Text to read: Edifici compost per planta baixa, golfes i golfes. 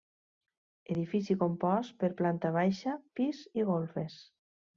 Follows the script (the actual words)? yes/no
no